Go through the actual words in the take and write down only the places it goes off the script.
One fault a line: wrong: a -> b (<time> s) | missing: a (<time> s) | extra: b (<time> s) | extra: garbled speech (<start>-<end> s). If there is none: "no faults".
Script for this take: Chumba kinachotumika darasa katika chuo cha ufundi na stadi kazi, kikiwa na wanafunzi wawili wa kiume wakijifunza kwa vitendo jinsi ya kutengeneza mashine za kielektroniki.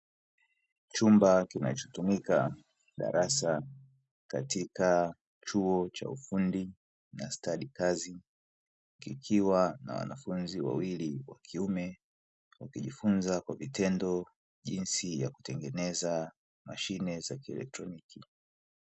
no faults